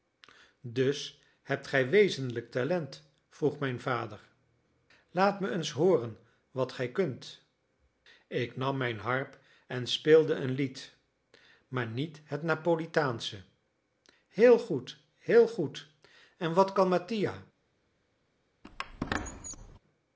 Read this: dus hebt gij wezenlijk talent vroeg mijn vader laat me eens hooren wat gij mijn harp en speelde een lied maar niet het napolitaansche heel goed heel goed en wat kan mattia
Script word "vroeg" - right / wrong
right